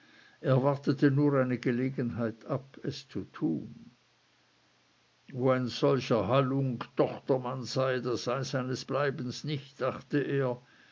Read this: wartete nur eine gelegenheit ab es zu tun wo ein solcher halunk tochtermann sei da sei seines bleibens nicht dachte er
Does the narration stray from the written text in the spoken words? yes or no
no